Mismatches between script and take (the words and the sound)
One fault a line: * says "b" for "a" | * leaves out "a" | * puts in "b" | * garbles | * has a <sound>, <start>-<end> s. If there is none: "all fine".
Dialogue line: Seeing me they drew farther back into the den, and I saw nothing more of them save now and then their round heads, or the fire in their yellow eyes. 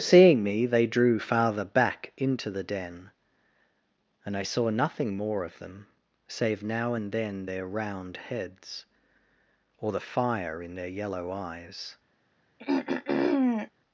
* has a throat clearing, 12.6-13.7 s